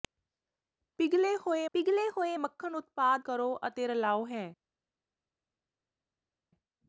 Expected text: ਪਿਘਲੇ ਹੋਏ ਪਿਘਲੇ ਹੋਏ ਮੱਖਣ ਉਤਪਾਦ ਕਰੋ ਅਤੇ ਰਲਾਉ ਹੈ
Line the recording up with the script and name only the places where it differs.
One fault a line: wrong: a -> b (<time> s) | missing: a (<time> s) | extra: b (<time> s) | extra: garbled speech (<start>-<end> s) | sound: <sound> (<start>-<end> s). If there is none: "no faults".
no faults